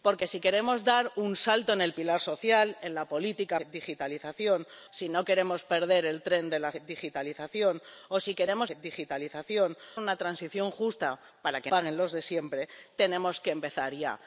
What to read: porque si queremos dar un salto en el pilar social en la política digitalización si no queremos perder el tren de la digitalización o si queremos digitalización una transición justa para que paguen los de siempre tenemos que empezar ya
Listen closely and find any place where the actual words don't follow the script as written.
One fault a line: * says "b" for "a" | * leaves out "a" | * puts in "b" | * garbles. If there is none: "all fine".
all fine